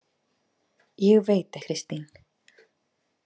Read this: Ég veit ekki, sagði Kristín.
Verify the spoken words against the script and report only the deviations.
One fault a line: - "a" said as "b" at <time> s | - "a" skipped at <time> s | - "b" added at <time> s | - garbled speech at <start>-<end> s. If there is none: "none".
- "ekki sagði" skipped at 1.6 s